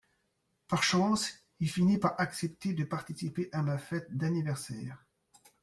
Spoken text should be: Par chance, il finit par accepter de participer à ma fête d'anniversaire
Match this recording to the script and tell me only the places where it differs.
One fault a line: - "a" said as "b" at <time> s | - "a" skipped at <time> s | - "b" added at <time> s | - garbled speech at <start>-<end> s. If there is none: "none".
none